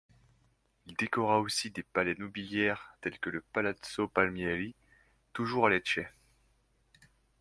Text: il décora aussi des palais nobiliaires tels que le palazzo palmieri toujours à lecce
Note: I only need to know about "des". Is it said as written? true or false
true